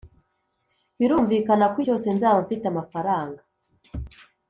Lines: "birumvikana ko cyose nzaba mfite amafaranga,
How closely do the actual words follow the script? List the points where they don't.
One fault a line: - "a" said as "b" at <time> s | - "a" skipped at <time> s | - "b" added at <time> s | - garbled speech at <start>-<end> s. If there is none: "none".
none